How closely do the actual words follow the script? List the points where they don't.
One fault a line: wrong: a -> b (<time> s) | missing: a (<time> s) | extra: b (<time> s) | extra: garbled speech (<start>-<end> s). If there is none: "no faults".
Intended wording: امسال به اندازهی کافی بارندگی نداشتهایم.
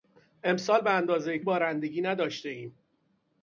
missing: کافی (1.4 s)